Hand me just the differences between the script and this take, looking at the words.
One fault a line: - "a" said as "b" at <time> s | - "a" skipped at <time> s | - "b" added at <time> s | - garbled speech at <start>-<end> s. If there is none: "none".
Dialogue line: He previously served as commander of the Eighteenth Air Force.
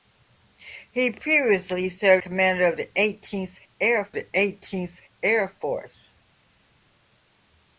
- "as" skipped at 2.2 s
- "the Eighteenth Air" added at 4.1 s